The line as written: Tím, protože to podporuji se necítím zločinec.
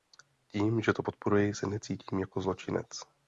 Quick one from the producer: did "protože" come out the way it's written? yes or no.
no